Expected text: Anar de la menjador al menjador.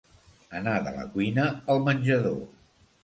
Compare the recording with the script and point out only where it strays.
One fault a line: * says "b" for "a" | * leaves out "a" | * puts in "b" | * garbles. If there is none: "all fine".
* says "cuina" for "menjador"